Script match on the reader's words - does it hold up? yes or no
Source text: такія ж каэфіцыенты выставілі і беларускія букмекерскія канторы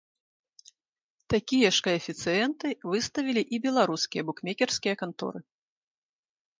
yes